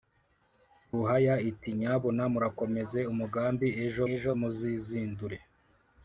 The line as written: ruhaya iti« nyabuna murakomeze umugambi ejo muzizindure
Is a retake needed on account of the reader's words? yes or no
yes